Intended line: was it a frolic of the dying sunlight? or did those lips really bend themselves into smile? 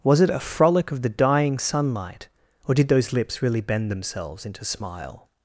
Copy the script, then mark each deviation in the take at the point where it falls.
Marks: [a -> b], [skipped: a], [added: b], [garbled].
was it a frolic of the dying sunlight? or did those lips really bend themselves into smile?